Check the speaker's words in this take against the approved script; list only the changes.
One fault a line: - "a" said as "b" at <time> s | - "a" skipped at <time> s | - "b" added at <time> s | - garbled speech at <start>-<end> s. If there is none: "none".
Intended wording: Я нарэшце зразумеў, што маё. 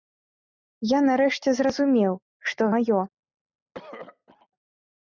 none